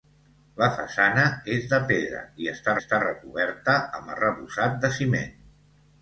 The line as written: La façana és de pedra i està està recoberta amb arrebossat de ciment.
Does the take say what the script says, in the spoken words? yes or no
yes